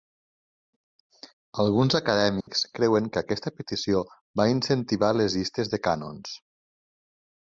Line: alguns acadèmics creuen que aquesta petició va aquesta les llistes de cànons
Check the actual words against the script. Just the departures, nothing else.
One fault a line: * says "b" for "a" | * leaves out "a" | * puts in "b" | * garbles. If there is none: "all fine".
* says "incentivar" for "aquesta"